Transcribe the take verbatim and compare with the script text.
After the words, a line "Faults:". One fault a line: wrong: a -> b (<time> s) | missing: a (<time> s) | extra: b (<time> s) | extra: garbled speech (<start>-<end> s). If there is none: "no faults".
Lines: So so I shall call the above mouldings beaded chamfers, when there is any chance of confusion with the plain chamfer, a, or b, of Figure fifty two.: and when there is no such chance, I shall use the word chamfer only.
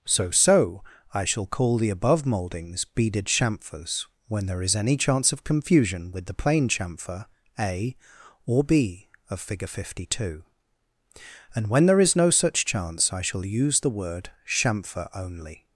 So so I shall call the above mouldings beaded chamfers, when there is any chance of confusion with the plain chamfer, a, or b, of Figure fifty two.: and when there is no such chance, I shall use the word chamfer only.
Faults:
no faults